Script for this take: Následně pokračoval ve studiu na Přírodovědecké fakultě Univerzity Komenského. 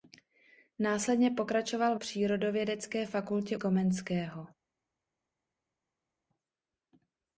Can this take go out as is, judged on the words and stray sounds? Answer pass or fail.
fail